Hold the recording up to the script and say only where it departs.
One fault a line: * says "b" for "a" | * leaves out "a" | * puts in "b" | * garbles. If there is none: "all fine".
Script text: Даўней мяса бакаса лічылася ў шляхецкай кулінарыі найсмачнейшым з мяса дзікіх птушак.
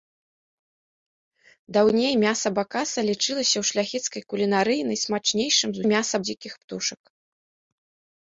all fine